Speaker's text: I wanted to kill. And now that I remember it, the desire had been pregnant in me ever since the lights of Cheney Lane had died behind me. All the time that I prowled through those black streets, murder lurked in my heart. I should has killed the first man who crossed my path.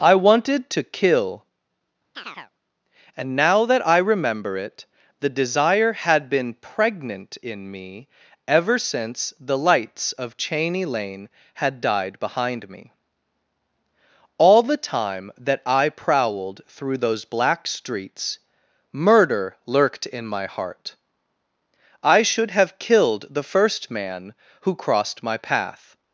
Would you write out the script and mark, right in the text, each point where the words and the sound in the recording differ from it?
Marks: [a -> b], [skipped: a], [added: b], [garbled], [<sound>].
I wanted to kill. [chirp] And now that I remember it, the desire had been pregnant in me ever since the lights of Cheney Lane had died behind me. All the time that I prowled through those black streets, murder lurked in my heart. I should [has -> have] killed the first man who crossed my path.